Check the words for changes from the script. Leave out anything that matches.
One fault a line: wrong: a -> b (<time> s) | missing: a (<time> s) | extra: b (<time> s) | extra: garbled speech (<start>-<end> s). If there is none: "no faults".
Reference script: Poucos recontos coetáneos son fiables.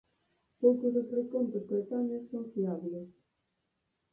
extra: dos (0.9 s)